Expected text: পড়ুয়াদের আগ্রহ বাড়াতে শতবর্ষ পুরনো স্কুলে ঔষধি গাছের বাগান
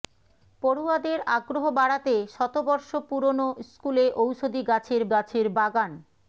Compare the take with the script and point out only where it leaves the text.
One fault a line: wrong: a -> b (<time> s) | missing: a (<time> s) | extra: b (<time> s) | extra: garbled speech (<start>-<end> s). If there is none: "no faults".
extra: গাছের (5.1 s)